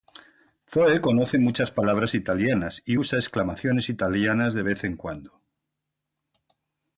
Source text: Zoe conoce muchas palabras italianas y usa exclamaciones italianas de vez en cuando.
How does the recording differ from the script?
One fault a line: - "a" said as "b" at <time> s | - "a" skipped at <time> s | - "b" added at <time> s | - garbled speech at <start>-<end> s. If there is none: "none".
none